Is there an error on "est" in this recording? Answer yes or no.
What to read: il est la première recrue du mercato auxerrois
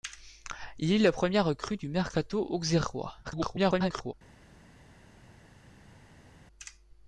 no